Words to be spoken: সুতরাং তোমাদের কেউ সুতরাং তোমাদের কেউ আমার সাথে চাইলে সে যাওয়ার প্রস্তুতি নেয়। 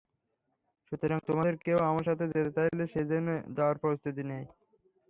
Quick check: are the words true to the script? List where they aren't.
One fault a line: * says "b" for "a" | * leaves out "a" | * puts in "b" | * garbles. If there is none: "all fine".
* leaves out "সুতরাং তোমাদের কেউ"
* puts in "যেতে"
* puts in "যেন"